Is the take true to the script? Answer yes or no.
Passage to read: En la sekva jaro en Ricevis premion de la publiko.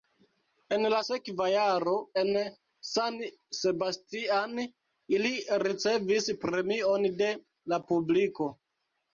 no